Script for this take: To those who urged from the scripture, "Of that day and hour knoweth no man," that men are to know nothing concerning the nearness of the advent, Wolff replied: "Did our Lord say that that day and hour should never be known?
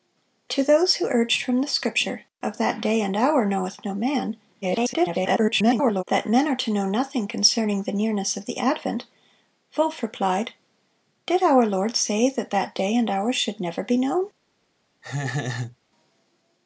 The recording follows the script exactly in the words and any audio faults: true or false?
false